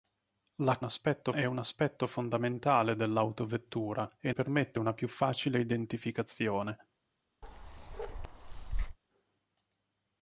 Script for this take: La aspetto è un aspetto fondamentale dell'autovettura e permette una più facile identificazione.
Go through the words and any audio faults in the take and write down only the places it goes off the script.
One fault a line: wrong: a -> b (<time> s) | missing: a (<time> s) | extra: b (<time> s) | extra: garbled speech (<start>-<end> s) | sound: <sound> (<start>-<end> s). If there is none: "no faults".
sound: bark (7.4-9.0 s)